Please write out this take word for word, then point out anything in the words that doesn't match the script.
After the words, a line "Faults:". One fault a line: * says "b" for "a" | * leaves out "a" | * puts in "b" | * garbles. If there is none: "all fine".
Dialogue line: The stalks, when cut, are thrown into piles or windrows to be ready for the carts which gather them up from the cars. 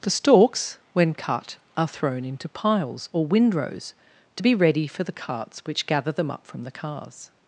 The stalks, when cut, are thrown into piles or windrows to be ready for the carts which gather them up from the cars.
Faults:
all fine